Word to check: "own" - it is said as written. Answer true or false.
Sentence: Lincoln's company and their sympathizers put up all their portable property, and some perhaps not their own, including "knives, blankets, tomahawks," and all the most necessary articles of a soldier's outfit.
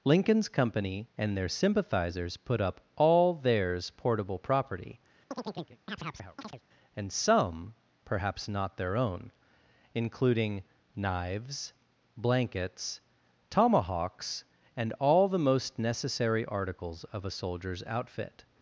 true